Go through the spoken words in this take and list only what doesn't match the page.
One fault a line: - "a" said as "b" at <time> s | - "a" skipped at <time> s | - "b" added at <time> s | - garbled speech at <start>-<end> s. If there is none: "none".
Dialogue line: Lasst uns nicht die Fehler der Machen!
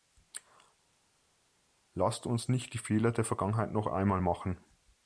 - "Vergangenheit noch einmal" added at 3.2 s